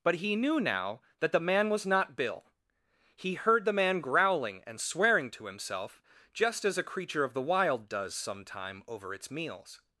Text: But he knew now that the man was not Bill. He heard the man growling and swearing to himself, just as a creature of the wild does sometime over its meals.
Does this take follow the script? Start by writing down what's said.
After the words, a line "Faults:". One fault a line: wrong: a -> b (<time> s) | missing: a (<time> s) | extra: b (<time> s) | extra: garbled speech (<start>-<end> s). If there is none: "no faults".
But he knew now that the man was not Bill. He heard the man growling and swearing to himself, just as a creature of the wild does sometime over its meals.
Faults:
no faults